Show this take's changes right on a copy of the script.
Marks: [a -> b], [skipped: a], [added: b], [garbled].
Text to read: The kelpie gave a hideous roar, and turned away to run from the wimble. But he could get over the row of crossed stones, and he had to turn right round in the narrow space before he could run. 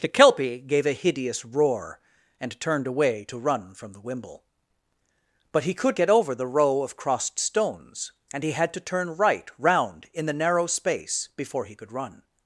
The kelpie gave a hideous roar, and turned away to run from the wimble. But he could get over the row of crossed stones, and he had to turn right round in the narrow space before he could run.